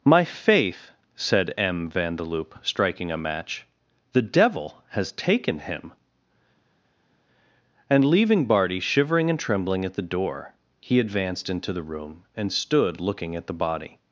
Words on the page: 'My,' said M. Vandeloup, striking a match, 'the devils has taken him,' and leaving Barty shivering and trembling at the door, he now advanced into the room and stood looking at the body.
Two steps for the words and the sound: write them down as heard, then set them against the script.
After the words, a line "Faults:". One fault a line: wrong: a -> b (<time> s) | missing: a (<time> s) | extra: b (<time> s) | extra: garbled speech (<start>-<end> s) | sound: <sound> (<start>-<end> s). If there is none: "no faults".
'My faith,' said M. Vandeloup, striking a match, 'the devil has taken him,' and leaving Barty shivering and trembling at the door, he advanced into the room and stood looking at the body.
Faults:
extra: faith (0.2 s)
wrong: devils -> devil (4.2 s)
missing: now (11.0 s)